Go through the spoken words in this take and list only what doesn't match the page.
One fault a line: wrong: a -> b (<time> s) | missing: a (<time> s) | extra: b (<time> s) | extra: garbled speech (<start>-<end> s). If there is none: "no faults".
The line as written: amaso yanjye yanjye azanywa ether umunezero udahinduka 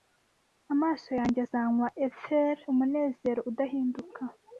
missing: yanjye (1.4 s)